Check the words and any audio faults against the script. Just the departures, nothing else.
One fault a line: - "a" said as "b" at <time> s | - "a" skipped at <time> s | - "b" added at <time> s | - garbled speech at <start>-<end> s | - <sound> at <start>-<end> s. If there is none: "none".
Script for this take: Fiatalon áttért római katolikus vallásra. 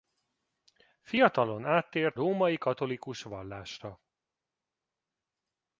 none